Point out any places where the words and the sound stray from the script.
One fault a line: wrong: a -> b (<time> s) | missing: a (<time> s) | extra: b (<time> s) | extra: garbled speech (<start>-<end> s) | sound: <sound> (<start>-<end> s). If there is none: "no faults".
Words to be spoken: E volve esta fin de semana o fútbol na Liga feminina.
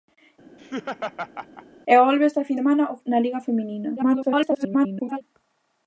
sound: laugh (0.6-1.7 s)
missing: de (2.6 s)
missing: fútbol (3.0 s)
extra: garbled speech (4.0-5.2 s)